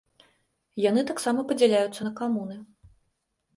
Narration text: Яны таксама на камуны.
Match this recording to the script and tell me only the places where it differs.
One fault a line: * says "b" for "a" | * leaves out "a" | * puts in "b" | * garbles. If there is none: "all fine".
* puts in "падзяляюцца"